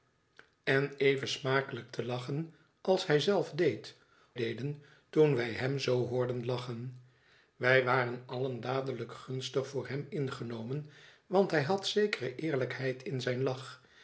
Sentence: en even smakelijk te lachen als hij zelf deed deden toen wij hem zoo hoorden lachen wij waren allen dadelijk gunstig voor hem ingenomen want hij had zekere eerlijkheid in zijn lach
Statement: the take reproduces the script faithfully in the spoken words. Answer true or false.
true